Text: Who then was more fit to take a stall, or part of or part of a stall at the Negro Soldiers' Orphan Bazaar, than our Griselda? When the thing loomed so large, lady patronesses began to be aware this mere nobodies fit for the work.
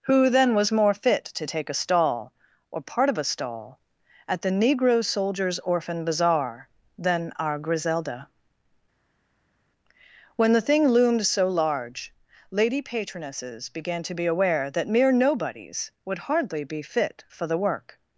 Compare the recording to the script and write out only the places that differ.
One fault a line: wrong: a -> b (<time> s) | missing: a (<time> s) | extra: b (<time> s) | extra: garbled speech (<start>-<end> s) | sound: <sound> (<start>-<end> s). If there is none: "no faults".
missing: or part of (3.2 s)
wrong: this -> that (14.7 s)
extra: would hardly be (16.0 s)